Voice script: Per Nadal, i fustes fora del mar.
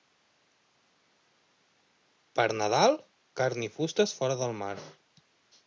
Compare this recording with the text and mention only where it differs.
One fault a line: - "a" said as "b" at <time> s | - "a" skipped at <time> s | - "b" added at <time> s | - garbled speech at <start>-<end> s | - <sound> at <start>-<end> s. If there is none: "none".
- "carn" added at 3.4 s